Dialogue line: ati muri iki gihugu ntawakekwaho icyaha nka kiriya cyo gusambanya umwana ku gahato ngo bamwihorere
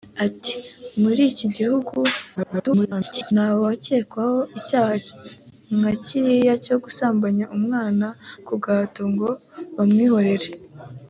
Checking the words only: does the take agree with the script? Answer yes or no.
no